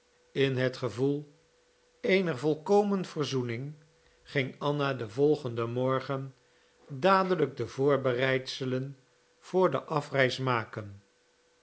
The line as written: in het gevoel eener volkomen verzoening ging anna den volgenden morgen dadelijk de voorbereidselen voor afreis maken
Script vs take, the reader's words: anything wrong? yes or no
yes